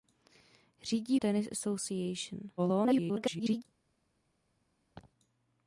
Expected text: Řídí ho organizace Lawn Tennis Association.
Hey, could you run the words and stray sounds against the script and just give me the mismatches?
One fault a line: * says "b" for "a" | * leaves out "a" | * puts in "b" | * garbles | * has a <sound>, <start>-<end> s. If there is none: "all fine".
* leaves out "ho organizace Lawn"
* garbles
* has a laugh, 4.9-5.1 s